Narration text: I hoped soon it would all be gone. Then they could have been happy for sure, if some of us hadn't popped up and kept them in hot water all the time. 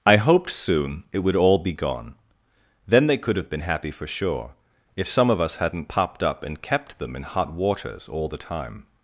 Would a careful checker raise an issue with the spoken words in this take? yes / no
yes